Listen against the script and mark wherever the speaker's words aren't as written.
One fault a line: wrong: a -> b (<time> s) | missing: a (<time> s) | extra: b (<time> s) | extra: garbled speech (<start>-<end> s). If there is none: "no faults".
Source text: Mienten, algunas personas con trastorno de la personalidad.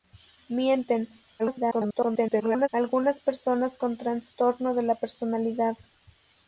extra: garbled speech (1.4-2.7 s)